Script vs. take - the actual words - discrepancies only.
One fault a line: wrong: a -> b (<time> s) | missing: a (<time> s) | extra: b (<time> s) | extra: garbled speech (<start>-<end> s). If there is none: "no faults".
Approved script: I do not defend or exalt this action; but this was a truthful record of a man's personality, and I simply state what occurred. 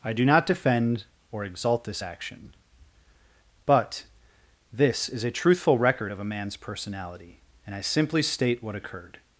wrong: was -> is (5.1 s)